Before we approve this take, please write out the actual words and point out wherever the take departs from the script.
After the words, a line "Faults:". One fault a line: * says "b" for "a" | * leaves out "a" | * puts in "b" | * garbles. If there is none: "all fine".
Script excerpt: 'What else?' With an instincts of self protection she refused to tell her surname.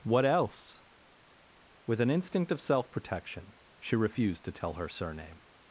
'What else?' With an instinct of self protection she refused to tell her surname.
Faults:
* says "instinct" for "instincts"